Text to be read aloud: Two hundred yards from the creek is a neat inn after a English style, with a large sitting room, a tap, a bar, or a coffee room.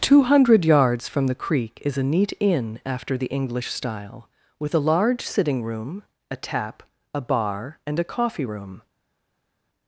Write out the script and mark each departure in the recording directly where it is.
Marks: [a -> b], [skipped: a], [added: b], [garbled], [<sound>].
Two hundred yards from the creek is a neat inn after [a -> the] English style, with a large sitting room, a tap, a bar, [or -> and] a coffee room.